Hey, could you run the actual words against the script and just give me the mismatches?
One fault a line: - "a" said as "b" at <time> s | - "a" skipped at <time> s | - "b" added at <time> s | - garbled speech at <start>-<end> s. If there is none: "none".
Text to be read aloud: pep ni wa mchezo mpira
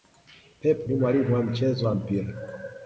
- "mwalimu" added at 1.0 s
- "wa" added at 1.9 s